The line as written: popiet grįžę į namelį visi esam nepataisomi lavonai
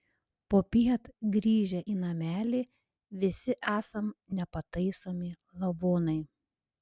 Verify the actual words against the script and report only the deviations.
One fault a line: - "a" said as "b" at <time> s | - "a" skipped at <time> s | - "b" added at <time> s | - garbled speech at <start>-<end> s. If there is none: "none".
none